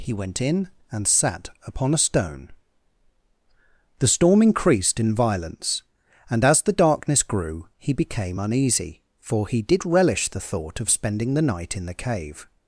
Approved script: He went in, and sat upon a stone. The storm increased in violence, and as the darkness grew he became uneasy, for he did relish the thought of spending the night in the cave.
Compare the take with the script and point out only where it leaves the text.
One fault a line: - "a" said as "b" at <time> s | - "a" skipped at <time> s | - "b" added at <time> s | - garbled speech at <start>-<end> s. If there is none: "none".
none